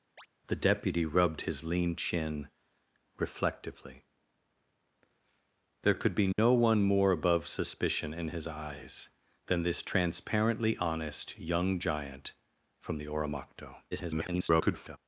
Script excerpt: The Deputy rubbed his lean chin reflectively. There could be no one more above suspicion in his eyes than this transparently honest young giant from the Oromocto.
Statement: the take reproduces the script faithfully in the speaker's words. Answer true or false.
false